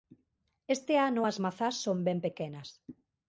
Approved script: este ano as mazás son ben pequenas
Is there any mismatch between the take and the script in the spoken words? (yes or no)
no